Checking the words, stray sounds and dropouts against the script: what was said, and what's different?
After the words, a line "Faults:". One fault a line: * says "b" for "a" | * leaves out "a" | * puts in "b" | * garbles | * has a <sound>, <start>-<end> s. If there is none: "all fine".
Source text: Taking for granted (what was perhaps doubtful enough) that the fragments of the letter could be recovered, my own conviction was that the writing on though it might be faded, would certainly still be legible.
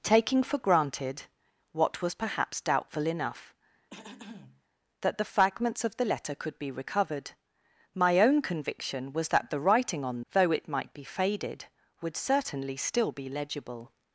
Taking for granted (what was perhaps doubtful enough) that the fragments of the letter could be recovered, my own conviction was that the writing on though it might be faded, would certainly still be legible.
Faults:
* has a throat clearing, 3.9-4.6 s